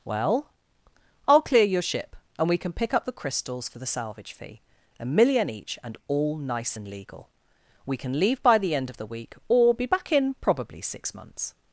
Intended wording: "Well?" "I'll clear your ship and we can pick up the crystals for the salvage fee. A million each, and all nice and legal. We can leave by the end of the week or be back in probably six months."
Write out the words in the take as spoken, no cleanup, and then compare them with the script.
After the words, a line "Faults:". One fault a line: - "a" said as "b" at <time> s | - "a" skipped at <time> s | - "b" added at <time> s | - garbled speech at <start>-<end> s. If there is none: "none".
"Well?" "I'll clear your ship and we can pick up the crystals for the salvage fee. A million each, and all nice and legal. We can leave by the end of the week or be back in probably six months."
Faults:
none